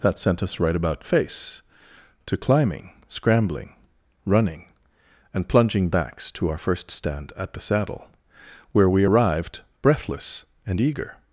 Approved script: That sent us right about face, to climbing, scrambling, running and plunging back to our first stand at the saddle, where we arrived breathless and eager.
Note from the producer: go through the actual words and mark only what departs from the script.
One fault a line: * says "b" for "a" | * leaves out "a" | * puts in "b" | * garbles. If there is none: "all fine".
* says "backs" for "back"